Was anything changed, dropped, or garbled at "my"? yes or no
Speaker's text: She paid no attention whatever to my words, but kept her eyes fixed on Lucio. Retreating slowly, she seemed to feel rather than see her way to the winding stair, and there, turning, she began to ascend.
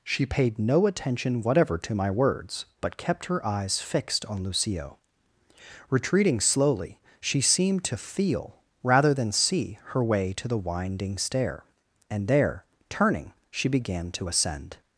no